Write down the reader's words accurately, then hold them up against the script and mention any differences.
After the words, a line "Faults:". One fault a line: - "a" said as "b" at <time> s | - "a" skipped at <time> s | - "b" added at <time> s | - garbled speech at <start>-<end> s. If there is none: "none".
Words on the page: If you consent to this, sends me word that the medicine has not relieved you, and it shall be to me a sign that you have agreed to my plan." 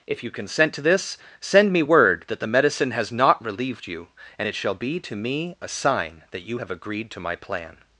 If you consent to this, send me word that the medicine has not relieved you, and it shall be to me a sign that you have agreed to my plan."
Faults:
- "sends" said as "send" at 1.4 s